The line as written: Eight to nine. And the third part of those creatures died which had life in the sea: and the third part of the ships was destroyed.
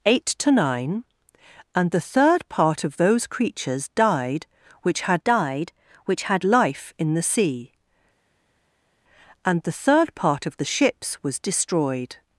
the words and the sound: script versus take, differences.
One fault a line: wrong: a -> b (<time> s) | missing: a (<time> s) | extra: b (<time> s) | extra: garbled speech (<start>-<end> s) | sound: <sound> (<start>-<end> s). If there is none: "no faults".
extra: died which had (5.2 s)